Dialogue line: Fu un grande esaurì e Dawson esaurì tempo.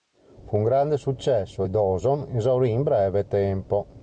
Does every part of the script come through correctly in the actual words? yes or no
no